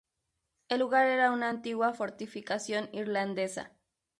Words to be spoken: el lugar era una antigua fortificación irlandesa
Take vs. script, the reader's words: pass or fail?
pass